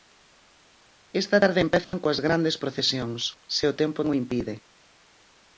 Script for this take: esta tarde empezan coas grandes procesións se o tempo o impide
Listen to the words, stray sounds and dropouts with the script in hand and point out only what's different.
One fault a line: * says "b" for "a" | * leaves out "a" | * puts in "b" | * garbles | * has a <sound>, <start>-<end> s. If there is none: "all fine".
* has a dropout, 1.8-1.9 s